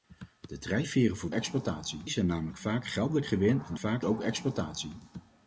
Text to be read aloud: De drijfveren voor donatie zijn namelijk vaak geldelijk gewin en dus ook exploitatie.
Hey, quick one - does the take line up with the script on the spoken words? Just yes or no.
no